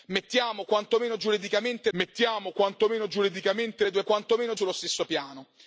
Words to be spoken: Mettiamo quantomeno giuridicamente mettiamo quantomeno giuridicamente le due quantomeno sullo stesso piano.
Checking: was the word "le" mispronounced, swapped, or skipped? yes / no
no